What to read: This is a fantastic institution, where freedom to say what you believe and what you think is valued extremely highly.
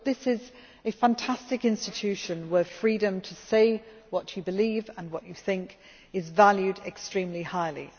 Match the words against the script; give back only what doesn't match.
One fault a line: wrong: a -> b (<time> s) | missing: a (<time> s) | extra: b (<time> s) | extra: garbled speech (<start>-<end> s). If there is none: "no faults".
no faults